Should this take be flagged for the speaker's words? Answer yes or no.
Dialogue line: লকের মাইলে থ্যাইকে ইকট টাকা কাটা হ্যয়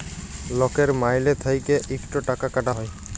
no